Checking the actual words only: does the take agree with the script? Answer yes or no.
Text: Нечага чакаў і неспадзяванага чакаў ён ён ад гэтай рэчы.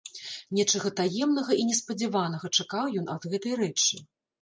no